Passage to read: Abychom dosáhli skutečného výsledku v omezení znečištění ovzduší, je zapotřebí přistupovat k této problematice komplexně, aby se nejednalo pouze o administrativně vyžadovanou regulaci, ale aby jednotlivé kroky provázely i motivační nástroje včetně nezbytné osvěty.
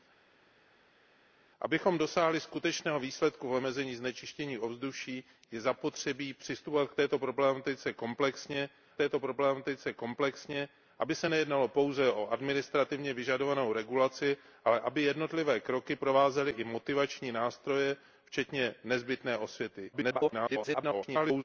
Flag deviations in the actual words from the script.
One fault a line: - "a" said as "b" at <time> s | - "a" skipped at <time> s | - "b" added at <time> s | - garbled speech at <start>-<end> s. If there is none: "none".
- "této problematice komplexně" added at 9.0 s
- garbled speech at 19.9-21.4 s